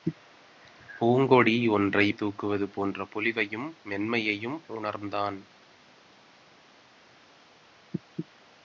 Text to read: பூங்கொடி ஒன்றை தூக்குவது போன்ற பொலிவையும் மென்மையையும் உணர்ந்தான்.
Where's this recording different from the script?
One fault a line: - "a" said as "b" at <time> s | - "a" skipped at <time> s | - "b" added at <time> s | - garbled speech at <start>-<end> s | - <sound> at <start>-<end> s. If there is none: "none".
none